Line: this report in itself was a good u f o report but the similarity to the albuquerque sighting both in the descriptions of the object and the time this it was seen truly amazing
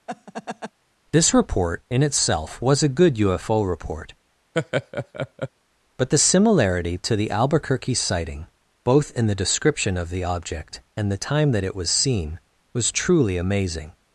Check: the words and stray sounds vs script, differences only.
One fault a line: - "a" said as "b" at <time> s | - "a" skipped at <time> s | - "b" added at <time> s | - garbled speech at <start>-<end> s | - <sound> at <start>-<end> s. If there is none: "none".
- laugh at 0.1-0.7 s
- laugh at 4.5-5.5 s
- "descriptions" said as "description" at 9.3 s
- "this" said as "that" at 11.5 s
- "was" added at 12.7 s